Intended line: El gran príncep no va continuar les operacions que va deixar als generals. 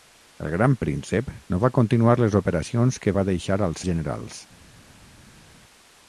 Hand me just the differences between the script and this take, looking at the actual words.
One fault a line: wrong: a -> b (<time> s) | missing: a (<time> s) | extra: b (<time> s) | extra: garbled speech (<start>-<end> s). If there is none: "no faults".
no faults